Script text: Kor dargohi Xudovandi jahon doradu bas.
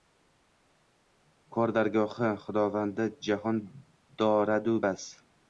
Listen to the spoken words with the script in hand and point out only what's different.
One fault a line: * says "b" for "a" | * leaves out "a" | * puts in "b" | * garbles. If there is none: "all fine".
all fine